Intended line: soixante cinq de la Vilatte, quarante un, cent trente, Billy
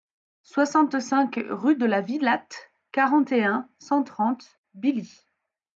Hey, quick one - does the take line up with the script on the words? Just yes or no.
no